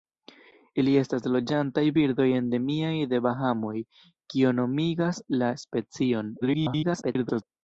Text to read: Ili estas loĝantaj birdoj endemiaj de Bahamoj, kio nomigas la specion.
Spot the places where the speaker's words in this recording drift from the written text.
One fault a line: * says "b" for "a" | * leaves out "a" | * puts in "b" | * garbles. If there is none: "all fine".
* garbles